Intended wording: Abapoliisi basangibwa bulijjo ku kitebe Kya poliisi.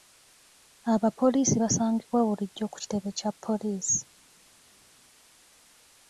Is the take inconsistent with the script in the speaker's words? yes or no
no